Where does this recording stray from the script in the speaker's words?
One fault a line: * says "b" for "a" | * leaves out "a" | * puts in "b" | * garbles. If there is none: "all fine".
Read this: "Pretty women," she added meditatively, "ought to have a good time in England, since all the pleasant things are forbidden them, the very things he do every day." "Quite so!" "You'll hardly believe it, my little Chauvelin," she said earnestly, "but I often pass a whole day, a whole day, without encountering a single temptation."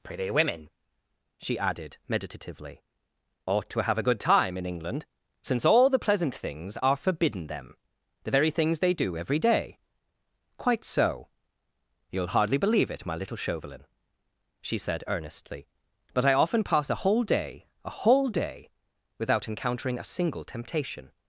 * says "they" for "he"